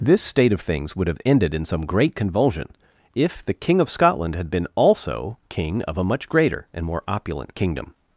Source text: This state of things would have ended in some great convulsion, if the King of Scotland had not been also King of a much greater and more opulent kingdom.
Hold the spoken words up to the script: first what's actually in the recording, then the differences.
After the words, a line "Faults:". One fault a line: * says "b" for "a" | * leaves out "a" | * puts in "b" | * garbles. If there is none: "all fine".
This state of things would have ended in some great convulsion, if the King of Scotland had been also King of a much greater and more opulent kingdom.
Faults:
* leaves out "not"